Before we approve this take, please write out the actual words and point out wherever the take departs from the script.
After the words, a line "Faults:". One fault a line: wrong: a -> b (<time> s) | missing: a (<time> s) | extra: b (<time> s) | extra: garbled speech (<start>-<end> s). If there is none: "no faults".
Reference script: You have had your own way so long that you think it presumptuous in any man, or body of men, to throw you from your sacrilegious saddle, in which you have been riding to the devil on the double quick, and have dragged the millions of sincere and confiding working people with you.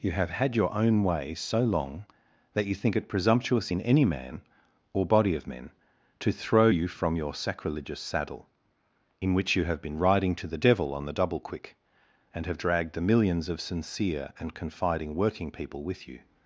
You have had your own way so long that you think it presumptuous in any man, or body of men, to throw you from your sacrilegious saddle, in which you have been riding to the devil on the double quick, and have dragged the millions of sincere and confiding working people with you.
Faults:
no faults